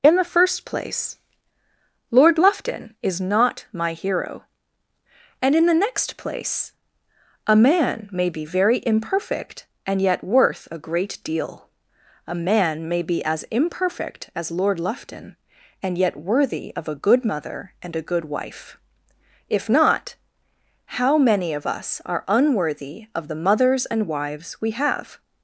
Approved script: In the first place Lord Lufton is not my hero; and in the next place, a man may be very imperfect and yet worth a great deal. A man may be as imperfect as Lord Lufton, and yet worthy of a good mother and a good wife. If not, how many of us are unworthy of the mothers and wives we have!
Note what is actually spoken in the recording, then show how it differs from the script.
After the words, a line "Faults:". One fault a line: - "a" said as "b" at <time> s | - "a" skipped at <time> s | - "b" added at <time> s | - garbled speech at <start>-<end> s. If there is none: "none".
In the first place Lord Lufton is not my hero; and in the next place, a man may be very imperfect and yet worth a great deal. A man may be as imperfect as Lord Lufton, and yet worthy of a good mother and a good wife. If not, how many of us are unworthy of the mothers and wives we have!
Faults:
none